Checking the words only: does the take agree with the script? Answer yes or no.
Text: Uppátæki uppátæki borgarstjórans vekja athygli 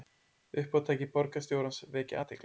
no